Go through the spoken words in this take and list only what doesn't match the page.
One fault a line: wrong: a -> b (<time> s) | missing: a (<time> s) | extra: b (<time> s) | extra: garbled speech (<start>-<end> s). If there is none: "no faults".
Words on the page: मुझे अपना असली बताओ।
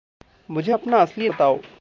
no faults